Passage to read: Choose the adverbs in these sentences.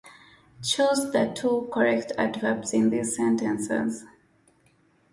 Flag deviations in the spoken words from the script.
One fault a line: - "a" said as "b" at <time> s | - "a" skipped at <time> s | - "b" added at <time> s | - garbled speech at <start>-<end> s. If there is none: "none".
- "two correct" added at 1.4 s